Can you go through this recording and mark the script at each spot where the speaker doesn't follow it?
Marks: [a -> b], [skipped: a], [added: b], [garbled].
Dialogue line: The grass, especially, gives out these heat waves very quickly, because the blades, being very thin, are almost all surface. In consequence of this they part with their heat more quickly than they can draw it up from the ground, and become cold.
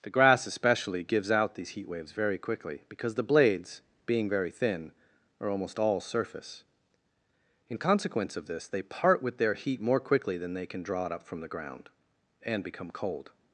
The grass, especially, gives out these heat waves very quickly, because the blades, being very thin, are almost all surface. In consequence of this they part with their heat more quickly than they can draw it up from the ground, and become cold.